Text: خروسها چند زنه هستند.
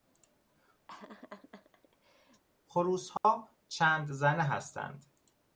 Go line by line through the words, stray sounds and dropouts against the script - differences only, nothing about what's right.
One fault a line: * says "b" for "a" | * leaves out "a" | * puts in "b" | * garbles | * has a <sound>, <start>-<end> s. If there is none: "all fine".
* has a laugh, 0.9-2.4 s
* has a dropout, 3.2-3.2 s